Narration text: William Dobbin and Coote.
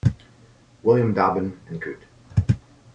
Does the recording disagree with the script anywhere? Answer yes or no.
no